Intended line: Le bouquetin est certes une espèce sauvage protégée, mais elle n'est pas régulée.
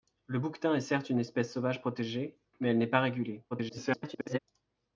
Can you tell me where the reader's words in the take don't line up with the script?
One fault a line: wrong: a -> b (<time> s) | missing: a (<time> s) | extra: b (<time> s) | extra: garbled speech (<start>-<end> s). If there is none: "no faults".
extra: garbled speech (3.5-4.4 s)